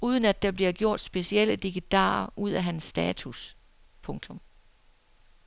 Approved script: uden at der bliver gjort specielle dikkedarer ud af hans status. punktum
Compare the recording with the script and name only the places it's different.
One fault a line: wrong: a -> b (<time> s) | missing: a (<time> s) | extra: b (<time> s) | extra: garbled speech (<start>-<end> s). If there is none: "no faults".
no faults